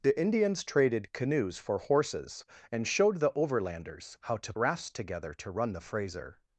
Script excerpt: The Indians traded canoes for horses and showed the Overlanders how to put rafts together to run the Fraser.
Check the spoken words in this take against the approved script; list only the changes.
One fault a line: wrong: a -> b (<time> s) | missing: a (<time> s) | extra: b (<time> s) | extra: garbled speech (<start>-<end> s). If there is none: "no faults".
missing: put (4.5 s)